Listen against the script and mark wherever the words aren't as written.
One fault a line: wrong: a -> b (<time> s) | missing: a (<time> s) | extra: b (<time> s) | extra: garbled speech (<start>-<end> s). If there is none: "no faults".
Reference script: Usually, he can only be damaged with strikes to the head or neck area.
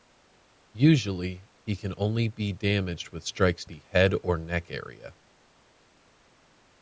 missing: to (3.6 s)